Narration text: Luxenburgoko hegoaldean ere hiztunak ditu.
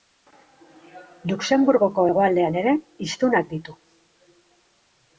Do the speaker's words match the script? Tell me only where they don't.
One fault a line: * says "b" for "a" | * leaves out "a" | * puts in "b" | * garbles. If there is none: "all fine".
all fine